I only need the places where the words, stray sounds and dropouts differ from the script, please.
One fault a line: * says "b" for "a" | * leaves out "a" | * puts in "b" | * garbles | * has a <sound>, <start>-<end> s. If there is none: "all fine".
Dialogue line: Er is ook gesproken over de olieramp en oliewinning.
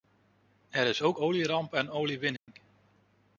* leaves out "gesproken over de"
* has a dropout, 2.4-2.5 s